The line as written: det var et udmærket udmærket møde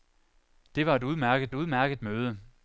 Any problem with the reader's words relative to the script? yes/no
no